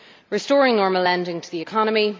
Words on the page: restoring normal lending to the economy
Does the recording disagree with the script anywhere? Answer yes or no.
no